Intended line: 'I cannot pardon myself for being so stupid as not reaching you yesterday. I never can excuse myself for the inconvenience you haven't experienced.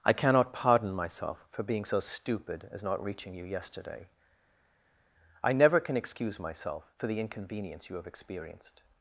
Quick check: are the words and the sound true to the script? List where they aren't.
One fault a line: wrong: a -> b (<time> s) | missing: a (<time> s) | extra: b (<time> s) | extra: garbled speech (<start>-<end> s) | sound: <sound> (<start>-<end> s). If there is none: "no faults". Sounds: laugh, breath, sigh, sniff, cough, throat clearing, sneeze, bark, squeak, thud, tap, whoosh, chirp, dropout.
wrong: haven't -> have (8.0 s)